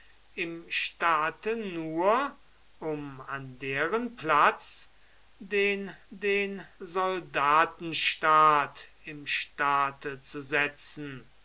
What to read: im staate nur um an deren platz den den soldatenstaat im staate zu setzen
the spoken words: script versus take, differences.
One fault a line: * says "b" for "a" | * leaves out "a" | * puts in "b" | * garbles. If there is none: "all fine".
all fine